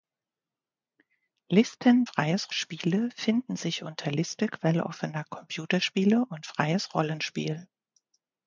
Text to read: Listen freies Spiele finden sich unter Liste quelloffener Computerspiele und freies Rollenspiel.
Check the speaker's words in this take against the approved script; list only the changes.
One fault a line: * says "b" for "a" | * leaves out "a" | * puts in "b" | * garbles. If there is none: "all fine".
all fine